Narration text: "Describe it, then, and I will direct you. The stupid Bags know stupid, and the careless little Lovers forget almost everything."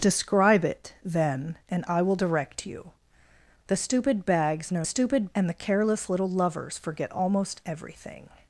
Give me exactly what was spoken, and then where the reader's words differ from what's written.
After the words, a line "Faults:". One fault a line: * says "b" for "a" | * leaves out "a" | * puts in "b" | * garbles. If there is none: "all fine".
"Describe it, then, and I will direct you. The stupid Bags know stupid, and the careless little Lovers forget almost everything."
Faults:
all fine